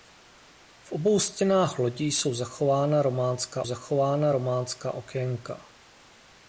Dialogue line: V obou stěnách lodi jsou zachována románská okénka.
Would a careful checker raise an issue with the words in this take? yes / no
yes